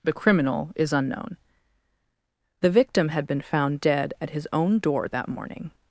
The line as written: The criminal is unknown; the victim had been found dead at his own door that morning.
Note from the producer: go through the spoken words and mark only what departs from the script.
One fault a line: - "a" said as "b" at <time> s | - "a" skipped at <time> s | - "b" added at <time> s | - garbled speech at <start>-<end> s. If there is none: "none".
none